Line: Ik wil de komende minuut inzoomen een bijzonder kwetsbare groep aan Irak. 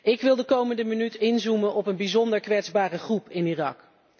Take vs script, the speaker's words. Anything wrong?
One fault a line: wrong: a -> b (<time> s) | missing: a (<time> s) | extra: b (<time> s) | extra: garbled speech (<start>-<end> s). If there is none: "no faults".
extra: op (1.7 s)
wrong: aan -> in (3.3 s)